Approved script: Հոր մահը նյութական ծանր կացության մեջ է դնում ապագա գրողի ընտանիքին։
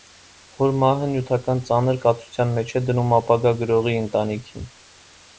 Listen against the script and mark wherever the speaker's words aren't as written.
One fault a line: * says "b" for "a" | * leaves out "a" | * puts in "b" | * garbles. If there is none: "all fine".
all fine